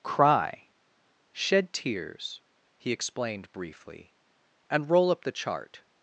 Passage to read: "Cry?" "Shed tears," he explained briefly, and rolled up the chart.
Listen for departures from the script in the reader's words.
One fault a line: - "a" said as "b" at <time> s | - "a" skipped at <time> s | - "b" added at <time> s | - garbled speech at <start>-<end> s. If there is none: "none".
- "rolled" said as "roll" at 4.9 s